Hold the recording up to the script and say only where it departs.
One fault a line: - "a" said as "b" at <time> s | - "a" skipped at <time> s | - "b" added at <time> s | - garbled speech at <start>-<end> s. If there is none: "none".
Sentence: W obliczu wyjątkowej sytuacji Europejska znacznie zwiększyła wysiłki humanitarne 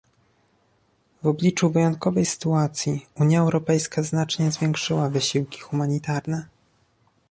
- "Unia" added at 3.2 s